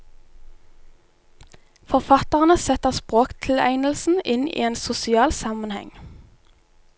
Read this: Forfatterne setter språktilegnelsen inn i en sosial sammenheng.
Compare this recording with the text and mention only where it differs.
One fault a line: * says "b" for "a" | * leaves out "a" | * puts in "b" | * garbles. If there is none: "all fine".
all fine